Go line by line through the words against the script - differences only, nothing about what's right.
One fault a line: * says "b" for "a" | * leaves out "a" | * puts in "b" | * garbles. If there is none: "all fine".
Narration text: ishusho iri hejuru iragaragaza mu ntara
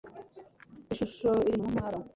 * leaves out "hejuru iragaragaza"